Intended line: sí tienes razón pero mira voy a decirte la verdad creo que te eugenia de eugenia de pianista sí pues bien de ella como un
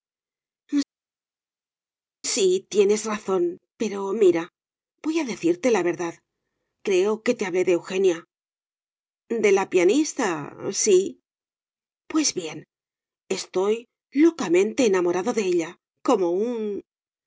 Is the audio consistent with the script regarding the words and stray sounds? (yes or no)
no